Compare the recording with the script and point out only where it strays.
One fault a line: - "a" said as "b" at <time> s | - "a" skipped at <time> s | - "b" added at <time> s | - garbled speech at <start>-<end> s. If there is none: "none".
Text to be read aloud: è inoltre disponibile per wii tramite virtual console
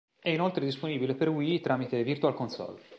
none